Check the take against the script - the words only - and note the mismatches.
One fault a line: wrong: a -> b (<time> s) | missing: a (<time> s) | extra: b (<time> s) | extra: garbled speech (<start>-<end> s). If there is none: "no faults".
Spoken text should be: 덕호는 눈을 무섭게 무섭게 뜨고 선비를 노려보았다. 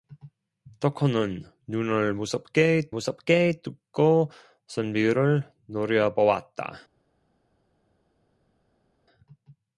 no faults